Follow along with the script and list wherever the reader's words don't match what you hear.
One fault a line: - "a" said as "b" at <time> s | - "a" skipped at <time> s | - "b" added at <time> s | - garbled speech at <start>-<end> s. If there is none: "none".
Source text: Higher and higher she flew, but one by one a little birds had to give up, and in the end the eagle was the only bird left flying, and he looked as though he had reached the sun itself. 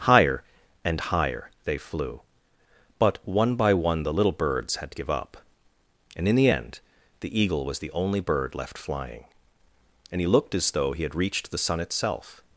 - "she" said as "they" at 1.6 s
- "a" said as "the" at 4.0 s